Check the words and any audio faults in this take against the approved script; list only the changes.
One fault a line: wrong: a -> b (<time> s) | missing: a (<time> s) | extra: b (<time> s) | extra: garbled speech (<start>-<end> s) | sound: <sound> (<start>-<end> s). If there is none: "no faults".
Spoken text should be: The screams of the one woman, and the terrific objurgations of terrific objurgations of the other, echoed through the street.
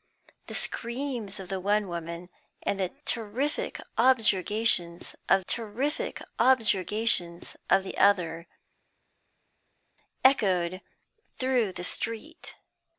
no faults